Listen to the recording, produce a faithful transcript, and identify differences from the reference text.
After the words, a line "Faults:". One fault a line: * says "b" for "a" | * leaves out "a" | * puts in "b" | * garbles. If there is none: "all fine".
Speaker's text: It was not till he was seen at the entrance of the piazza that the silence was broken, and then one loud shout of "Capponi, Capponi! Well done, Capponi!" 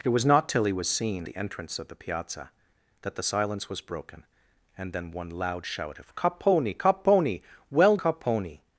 It was not till he was seen the entrance of the piazza that the silence was broken, and then one loud shout of "Capponi, Capponi! Well Capponi!"
Faults:
* leaves out "at"
* leaves out "done"